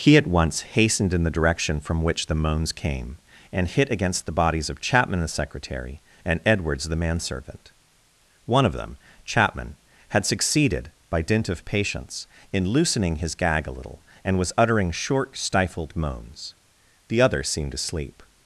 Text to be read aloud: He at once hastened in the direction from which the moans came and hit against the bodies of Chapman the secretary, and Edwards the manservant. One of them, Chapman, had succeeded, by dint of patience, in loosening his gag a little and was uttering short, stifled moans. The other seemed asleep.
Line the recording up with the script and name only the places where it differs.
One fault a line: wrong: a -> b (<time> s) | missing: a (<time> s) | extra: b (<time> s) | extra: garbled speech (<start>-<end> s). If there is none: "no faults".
no faults